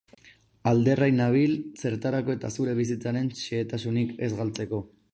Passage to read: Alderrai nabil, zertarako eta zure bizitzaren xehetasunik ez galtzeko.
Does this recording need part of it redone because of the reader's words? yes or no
no